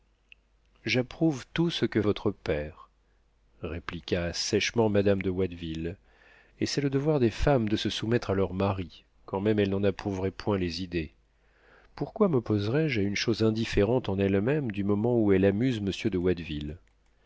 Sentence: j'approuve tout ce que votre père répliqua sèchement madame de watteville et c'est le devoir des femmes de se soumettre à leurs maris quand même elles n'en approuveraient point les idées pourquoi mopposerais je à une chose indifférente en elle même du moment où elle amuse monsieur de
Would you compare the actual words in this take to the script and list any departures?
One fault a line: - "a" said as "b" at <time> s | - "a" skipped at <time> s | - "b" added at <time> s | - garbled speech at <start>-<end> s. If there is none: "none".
none